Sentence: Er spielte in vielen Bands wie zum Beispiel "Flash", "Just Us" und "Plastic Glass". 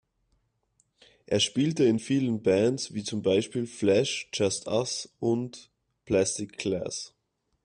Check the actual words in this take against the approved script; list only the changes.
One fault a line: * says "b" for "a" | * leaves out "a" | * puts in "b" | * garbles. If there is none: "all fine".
all fine